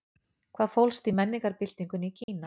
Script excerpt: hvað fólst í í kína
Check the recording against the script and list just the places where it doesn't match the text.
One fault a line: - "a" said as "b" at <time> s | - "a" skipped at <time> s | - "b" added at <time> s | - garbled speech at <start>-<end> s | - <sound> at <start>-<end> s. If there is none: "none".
- "menningarbyltingunni" added at 1.2 s
- dropout at 2.2-2.3 s